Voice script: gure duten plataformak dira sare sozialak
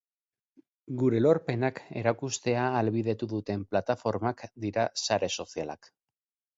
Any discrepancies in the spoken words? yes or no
yes